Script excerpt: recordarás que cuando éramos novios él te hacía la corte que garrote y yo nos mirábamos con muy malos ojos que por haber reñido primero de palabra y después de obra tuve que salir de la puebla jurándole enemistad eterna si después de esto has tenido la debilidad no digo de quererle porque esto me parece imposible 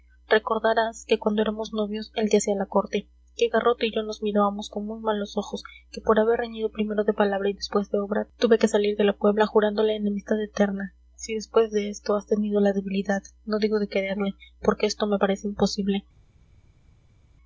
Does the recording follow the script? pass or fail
pass